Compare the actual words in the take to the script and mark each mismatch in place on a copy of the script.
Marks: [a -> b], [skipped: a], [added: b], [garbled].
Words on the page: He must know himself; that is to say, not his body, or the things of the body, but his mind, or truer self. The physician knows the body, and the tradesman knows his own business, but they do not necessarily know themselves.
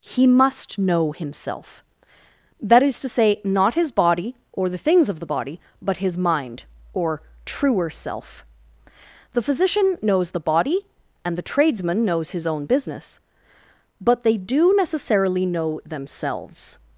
He must know himself; that is to say, not his body, or the things of the body, but his mind, or truer self. The physician knows the body, and the tradesman knows his own business, but they do [skipped: not] necessarily know themselves.